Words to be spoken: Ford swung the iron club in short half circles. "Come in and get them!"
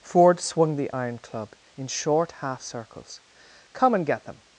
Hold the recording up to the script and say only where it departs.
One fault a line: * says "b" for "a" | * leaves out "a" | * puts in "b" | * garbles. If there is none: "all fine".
* leaves out "in"